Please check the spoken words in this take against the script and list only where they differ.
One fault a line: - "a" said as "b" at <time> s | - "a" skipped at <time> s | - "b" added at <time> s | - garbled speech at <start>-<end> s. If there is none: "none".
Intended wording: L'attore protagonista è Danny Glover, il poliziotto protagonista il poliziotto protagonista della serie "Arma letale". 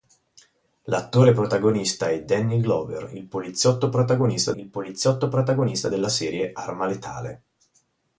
none